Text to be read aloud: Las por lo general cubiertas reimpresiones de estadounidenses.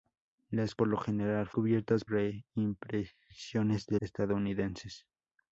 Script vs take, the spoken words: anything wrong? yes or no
no